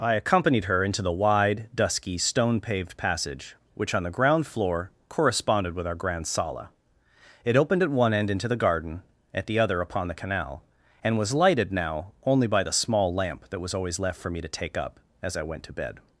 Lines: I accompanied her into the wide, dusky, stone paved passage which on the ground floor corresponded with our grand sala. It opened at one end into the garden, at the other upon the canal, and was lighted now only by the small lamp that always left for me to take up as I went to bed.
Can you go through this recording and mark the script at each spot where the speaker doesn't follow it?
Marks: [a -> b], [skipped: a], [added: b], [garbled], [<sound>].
I accompanied her into the wide, dusky, stone paved passage which on the ground floor corresponded with our grand sala. It opened at one end into the garden, at the other upon the canal, and was lighted now only by the small lamp that [added: was] always left for me to take up as I went to bed.